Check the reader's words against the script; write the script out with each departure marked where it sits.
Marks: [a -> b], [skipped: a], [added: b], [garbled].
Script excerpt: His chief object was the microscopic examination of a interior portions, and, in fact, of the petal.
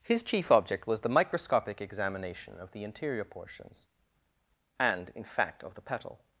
His chief object was the microscopic examination of [a -> the] interior portions, and, in fact, of the petal.